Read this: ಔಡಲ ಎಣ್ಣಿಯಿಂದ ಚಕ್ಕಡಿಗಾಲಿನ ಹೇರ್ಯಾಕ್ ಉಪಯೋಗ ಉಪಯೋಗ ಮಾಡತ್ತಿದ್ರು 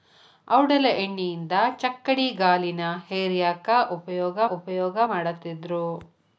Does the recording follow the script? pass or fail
pass